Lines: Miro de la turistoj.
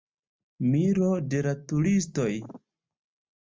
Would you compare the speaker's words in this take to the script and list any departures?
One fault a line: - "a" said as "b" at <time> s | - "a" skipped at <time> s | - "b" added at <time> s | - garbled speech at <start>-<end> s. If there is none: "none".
none